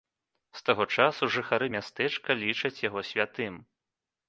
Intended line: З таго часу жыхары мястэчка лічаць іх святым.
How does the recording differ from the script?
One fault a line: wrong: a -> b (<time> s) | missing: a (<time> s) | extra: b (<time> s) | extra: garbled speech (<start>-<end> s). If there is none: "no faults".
wrong: іх -> яго (2.9 s)